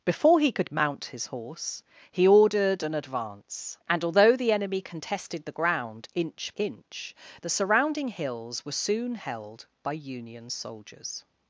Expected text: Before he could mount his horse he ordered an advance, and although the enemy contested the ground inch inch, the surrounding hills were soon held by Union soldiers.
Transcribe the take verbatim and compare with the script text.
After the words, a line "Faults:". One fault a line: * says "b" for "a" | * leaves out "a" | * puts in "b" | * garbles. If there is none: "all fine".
Before he could mount his horse he ordered an advance, and although the enemy contested the ground inch inch, the surrounding hills were soon held by Union soldiers.
Faults:
all fine